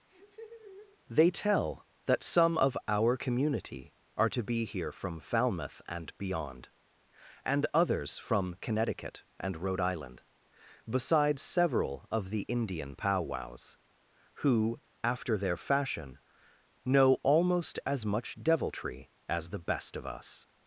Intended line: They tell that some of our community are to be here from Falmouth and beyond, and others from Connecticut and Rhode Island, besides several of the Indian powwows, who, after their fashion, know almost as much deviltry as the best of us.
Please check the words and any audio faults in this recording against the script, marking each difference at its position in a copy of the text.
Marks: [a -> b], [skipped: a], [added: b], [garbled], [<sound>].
[laugh] They tell that some of our community are to be here from Falmouth and beyond, and others from Connecticut and Rhode Island, besides several of the Indian powwows, who, after their fashion, know almost as much deviltry as the best of us.